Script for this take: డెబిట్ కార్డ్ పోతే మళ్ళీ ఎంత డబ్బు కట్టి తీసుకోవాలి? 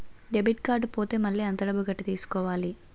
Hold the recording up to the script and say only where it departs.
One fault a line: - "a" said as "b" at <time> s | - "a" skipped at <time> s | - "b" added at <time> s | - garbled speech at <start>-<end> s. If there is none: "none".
none